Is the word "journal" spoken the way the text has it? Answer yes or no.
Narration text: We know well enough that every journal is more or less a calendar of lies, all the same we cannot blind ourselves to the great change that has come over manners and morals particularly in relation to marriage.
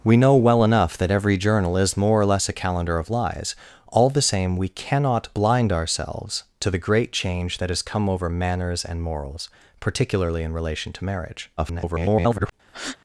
yes